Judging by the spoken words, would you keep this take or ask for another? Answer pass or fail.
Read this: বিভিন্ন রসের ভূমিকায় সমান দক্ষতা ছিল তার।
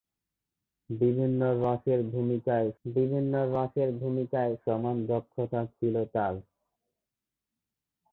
fail